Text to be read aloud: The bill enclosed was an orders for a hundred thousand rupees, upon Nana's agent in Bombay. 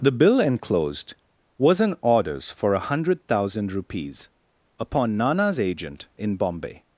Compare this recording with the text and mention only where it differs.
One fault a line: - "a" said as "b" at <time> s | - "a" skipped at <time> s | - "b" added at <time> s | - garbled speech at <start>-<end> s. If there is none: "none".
none